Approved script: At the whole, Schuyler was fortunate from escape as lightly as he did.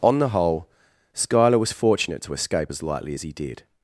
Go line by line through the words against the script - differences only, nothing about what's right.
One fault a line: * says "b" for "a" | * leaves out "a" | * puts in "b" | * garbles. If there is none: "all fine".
* says "On" for "At"
* says "to" for "from"